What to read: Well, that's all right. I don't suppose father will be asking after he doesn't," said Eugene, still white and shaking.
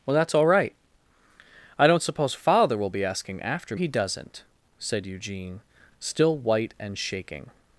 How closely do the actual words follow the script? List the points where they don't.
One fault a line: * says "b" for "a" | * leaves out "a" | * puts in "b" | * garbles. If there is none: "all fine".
all fine